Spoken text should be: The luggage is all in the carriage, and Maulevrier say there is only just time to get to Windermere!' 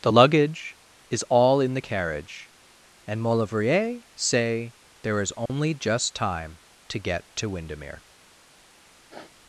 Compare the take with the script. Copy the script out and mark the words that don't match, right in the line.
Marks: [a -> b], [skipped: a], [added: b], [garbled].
The luggage is all in the carriage, and Maulevrier say there is only just time to get to Windermere!'